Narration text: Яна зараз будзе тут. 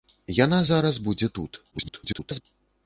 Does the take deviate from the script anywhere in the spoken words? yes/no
yes